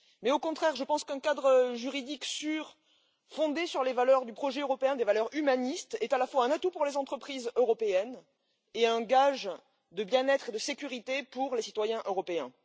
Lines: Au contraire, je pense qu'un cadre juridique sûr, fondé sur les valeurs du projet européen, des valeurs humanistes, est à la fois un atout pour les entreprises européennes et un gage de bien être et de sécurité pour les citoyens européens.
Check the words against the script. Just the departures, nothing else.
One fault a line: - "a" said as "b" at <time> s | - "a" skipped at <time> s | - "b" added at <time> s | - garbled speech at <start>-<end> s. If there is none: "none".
none